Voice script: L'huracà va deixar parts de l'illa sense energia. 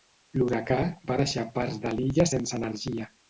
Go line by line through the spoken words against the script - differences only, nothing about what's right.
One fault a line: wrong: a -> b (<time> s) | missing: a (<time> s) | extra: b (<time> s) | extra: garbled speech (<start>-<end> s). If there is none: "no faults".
no faults